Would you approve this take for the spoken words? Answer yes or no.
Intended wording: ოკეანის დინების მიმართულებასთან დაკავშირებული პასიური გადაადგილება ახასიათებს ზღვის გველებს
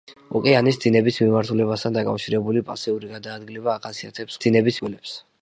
no